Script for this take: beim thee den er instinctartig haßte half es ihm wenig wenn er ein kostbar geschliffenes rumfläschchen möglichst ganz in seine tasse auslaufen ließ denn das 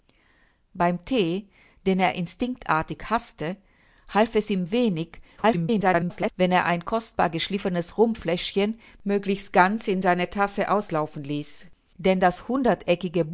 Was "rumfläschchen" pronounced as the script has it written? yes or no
yes